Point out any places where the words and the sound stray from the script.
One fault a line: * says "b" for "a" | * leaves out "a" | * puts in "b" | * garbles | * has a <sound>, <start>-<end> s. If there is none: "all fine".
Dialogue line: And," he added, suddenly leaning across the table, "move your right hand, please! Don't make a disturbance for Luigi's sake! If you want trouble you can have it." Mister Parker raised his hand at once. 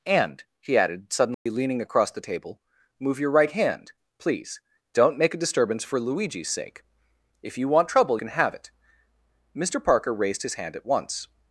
* has a dropout, 1.3-1.5 s
* leaves out "you"